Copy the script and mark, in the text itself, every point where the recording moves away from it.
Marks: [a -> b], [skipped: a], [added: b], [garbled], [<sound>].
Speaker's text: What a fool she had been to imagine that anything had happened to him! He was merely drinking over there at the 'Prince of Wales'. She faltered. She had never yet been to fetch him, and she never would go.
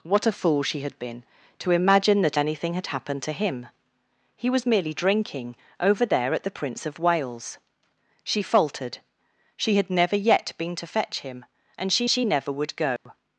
What a fool she had been to imagine that anything had happened to him! He was merely drinking over there at the 'Prince of Wales'. She faltered. She had never yet been to fetch him, and she [added: she] never would go. [dropout]